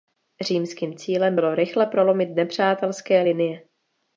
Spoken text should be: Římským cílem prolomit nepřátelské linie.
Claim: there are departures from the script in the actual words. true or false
true